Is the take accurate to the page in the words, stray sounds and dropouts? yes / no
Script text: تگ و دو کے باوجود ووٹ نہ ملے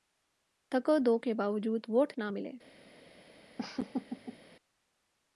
no